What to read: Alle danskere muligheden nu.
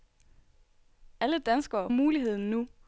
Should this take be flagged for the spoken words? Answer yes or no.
no